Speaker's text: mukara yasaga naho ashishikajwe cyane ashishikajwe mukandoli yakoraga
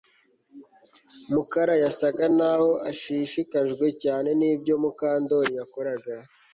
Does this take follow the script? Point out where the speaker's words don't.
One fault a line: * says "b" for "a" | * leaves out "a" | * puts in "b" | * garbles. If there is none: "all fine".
* says "nibyo" for "ashishikajwe"